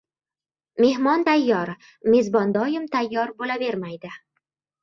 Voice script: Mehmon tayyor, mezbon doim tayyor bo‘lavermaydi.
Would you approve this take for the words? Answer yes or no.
yes